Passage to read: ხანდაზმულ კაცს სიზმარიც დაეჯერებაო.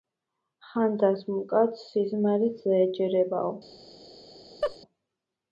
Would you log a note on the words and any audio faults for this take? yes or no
yes